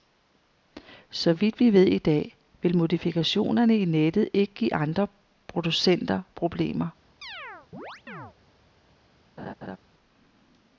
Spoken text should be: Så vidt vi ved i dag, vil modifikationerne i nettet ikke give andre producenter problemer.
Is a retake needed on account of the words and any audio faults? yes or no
yes